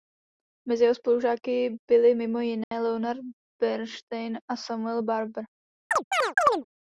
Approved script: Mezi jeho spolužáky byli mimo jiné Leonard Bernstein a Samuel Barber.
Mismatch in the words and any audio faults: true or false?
true